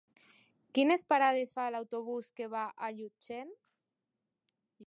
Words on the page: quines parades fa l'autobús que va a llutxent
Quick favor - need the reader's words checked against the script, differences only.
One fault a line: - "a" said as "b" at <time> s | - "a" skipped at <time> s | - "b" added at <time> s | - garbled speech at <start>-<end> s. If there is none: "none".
none